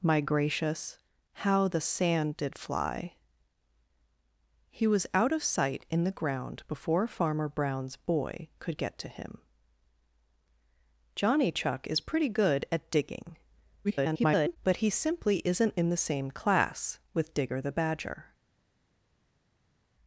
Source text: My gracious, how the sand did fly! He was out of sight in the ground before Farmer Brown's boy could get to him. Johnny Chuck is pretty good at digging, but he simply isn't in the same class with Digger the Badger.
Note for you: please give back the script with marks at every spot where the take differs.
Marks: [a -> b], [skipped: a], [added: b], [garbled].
My gracious, how the sand did fly! He was out of sight in the ground before Farmer Brown's boy could get to him. Johnny Chuck is pretty good at digging, [garbled] but he simply isn't in the same class with Digger the Badger.